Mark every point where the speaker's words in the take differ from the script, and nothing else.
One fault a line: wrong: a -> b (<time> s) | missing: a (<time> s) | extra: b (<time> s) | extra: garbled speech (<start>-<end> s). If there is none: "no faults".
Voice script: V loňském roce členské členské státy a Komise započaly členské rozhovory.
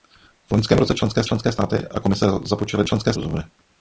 no faults